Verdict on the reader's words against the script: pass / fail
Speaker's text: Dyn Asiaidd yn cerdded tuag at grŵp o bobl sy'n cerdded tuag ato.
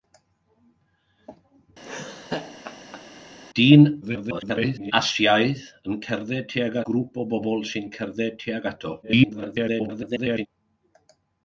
fail